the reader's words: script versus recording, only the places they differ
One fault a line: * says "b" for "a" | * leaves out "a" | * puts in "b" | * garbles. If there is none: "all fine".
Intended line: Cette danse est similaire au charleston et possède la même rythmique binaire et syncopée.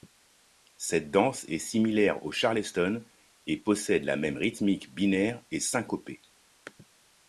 all fine